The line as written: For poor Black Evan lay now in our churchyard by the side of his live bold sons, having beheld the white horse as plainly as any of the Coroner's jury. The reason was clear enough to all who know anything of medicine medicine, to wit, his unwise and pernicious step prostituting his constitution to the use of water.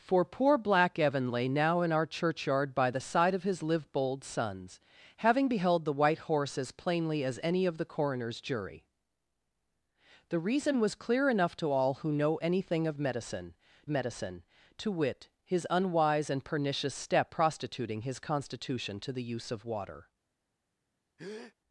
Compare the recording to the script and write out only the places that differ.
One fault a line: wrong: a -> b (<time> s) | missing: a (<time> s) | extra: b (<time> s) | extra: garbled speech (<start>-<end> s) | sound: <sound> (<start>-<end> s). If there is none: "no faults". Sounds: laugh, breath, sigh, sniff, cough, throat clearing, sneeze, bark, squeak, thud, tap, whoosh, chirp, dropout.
sound: breath (21.2-21.5 s)